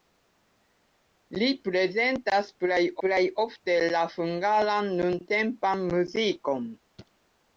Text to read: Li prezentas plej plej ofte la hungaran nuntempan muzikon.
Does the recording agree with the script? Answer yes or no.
yes